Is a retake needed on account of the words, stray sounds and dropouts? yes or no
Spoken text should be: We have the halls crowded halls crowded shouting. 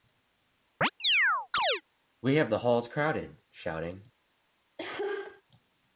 yes